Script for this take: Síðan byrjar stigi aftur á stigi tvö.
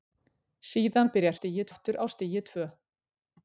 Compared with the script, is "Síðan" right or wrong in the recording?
right